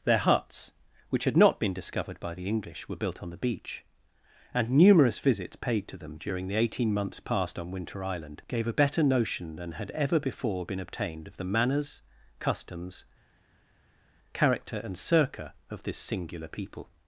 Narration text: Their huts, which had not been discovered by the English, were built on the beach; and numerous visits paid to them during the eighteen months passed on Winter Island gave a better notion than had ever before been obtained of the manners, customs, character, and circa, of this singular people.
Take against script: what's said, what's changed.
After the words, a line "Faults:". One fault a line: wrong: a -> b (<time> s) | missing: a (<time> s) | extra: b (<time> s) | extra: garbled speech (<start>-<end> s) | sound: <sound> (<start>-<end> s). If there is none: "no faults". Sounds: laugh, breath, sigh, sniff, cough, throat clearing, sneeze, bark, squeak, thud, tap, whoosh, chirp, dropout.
Their huts, which had not been discovered by the English, were built on the beach; and numerous visits paid to them during the eighteen months passed on Winter Island gave a better notion than had ever before been obtained of the manners, customs, character, and circa, of this singular people.
Faults:
no faults